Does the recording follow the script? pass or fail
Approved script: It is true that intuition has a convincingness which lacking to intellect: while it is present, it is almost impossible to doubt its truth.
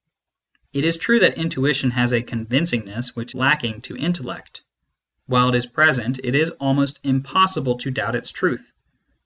pass